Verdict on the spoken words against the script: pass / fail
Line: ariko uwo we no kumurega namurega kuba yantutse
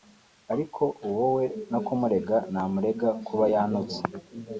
pass